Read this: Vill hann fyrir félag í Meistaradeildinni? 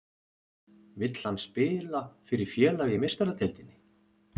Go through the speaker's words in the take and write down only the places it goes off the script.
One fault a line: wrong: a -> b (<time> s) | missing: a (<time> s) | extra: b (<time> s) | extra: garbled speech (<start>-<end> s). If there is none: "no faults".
extra: spila (1.4 s)